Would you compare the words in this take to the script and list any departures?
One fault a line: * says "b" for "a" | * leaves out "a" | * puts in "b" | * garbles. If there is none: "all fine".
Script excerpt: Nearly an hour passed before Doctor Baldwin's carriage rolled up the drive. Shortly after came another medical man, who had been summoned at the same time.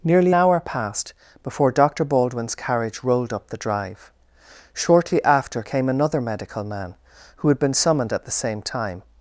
* leaves out "an"